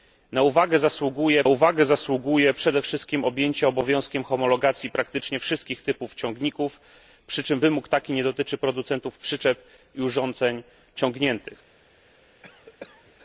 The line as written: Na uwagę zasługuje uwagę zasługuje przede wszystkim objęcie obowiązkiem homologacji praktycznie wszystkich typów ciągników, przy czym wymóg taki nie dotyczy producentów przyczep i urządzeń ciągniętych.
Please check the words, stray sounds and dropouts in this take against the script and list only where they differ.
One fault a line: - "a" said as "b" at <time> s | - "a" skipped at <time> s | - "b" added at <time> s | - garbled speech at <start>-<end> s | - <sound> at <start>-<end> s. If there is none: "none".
- cough at 12.4-13.1 s